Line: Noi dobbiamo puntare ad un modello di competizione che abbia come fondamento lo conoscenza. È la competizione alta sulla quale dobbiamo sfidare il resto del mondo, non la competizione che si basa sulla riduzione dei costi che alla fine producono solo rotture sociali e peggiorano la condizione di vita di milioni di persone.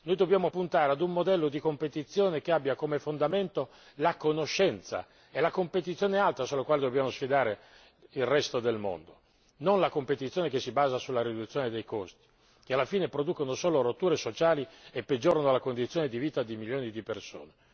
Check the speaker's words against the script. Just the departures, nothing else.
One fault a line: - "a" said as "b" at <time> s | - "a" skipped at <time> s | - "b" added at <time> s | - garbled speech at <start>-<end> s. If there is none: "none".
- "lo" said as "la" at 4.0 s